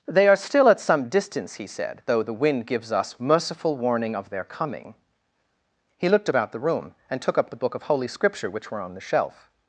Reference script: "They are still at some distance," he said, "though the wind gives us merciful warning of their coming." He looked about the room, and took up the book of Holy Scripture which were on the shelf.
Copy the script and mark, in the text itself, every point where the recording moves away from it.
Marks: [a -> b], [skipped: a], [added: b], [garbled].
"They are still at some distance," he said, "though the wind gives us merciful warning of their coming." He looked about the room, and took up the book of Holy Scripture which were on the shelf.